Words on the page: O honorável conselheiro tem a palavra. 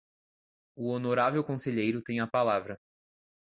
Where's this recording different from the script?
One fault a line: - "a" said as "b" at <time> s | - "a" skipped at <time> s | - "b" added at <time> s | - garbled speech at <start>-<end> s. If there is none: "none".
none